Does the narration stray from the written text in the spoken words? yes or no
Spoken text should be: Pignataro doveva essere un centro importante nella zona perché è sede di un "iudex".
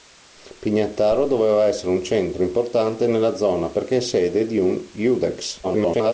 yes